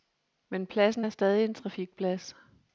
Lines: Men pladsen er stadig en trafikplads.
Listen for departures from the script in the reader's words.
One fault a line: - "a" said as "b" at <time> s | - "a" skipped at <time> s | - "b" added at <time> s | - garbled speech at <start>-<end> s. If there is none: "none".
none